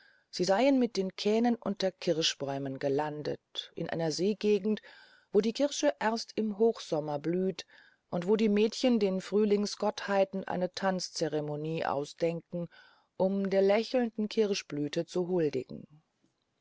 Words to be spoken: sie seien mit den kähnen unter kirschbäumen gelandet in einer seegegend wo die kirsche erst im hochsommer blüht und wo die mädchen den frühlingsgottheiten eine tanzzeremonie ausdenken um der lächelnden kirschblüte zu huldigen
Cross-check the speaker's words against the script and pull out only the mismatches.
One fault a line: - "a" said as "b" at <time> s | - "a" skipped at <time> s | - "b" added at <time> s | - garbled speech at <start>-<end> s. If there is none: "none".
none